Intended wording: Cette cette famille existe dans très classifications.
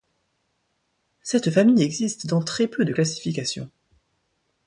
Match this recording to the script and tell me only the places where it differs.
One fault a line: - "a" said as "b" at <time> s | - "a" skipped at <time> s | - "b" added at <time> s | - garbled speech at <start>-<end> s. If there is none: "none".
- "cette" skipped at 1.5 s
- "peu de" added at 2.7 s